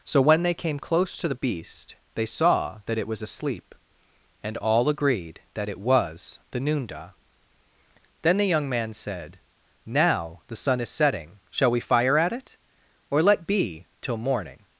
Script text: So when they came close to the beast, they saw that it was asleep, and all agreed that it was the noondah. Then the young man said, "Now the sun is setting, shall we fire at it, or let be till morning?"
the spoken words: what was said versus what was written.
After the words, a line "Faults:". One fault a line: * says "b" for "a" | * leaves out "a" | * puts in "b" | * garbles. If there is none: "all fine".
So when they came close to the beast, they saw that it was asleep, and all agreed that it was the noondah. Then the young man said, "Now the sun is setting, shall we fire at it, or let be till morning?"
Faults:
all fine